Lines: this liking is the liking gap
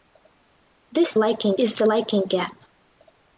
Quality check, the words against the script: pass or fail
pass